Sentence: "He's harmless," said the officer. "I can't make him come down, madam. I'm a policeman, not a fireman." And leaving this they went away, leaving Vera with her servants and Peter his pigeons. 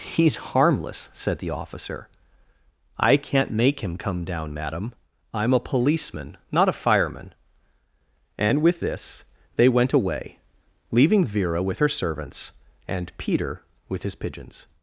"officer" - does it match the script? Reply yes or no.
yes